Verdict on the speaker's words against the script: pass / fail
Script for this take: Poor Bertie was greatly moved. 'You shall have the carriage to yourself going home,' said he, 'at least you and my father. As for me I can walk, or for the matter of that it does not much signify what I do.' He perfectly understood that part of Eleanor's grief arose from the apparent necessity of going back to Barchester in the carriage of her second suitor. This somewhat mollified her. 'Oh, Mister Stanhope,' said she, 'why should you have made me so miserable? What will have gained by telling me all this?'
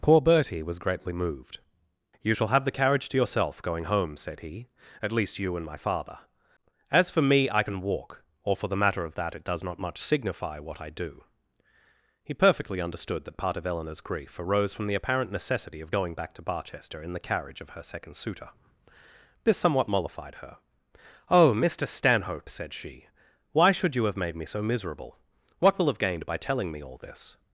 pass